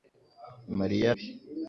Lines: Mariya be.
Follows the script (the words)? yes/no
yes